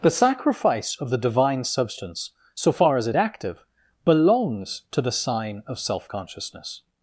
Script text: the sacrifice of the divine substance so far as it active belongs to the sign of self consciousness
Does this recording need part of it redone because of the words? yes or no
no